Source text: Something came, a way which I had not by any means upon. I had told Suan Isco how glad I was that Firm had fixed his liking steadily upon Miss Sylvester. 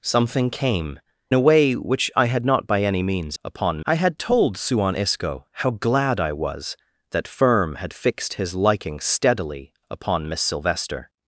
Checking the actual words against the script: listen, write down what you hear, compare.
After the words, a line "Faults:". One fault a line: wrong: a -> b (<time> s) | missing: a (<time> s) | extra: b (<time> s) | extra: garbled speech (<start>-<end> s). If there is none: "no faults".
Something came, a way which I had not by any means upon. I had told Suan Isco how glad I was that Firm had fixed his liking steadily upon Miss Sylvester.
Faults:
no faults